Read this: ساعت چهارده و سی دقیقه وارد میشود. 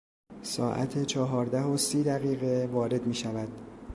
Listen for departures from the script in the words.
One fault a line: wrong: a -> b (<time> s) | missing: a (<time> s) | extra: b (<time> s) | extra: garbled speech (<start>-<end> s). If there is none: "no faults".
no faults